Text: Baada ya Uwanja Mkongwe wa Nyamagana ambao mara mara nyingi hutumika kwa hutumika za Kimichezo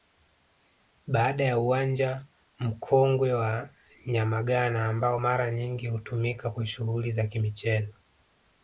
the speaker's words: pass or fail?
fail